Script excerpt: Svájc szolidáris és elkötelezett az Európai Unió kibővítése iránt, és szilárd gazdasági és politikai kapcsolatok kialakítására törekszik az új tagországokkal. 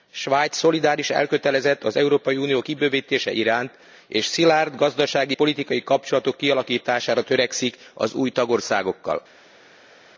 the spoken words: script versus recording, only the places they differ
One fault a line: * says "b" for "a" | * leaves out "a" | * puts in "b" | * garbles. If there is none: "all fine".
* leaves out "és"
* leaves out "és"